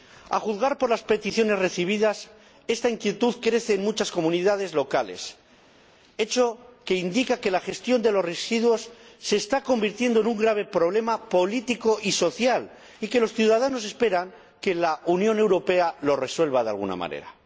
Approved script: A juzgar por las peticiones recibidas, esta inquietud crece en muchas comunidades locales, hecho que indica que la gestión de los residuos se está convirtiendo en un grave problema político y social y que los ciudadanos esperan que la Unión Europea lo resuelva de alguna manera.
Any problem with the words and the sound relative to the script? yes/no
no